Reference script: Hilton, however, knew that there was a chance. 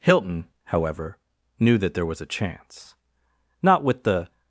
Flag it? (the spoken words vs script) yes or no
yes